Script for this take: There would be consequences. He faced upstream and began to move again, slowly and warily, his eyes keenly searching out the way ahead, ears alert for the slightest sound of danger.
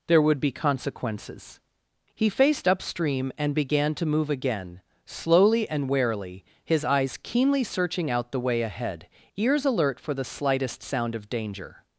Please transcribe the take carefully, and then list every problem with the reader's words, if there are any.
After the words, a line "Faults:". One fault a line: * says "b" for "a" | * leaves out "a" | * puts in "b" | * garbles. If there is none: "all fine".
There would be consequences. He faced upstream and began to move again, slowly and warily, his eyes keenly searching out the way ahead, ears alert for the slightest sound of danger.
Faults:
all fine